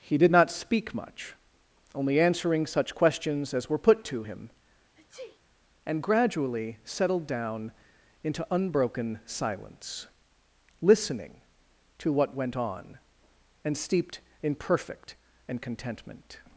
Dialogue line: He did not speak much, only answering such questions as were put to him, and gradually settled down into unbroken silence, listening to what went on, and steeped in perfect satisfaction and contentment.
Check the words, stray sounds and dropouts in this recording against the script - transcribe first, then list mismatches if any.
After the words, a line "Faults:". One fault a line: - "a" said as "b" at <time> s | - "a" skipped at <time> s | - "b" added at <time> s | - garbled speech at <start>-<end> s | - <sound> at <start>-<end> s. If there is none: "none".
He did not speak much, only answering such questions as were put to him, and gradually settled down into unbroken silence, listening to what went on, and steeped in perfect and contentment.
Faults:
- sneeze at 4.9-5.4 s
- "satisfaction" skipped at 15.2 s